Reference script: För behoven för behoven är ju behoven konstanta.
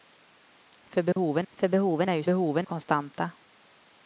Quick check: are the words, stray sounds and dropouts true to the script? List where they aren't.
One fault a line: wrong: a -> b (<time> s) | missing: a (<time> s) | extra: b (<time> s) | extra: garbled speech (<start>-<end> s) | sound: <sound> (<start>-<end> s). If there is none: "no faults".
sound: dropout (1.1-1.2 s)